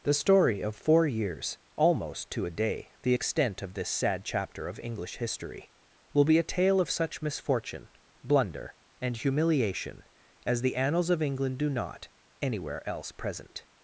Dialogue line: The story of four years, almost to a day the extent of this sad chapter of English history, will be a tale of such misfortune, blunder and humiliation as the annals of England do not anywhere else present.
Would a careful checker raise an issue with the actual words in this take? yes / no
no